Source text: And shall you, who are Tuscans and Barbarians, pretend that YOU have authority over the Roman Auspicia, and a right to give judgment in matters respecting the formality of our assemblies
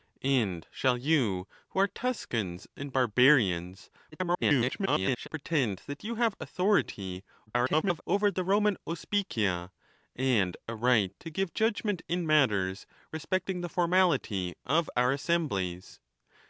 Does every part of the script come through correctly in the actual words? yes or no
no